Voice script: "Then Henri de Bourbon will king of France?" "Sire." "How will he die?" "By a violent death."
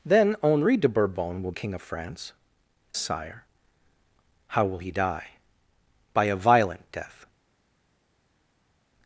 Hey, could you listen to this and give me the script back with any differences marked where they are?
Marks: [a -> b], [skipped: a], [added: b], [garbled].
"Then Henri de Bourbon will king of France?" "Sire." "How will he die?" "By a violent death."